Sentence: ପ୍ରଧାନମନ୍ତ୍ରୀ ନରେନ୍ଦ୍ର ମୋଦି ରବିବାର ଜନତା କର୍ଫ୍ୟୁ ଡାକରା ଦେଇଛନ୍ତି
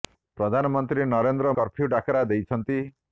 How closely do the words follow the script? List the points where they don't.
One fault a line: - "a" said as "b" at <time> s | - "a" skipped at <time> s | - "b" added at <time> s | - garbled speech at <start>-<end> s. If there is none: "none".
- "ମୋଦି ରବିବାର ଜନତା" skipped at 1.5 s